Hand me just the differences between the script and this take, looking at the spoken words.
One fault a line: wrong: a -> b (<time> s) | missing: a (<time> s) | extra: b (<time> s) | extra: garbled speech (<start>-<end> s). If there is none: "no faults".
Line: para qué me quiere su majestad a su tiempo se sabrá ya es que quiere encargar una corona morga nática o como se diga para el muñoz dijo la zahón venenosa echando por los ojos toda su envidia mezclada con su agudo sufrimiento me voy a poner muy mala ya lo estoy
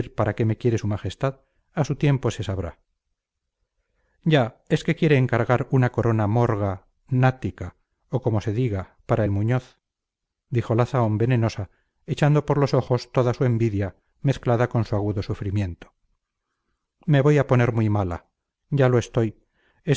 no faults